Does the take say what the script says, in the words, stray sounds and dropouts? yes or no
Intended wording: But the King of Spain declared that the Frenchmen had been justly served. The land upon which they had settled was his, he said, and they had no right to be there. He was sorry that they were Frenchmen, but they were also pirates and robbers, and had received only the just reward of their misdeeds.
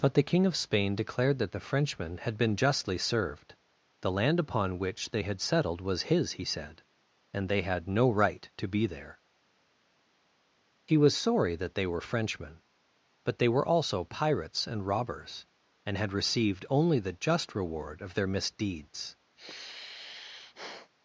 no